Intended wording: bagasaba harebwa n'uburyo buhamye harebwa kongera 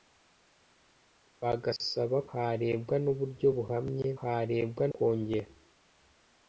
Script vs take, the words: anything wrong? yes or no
no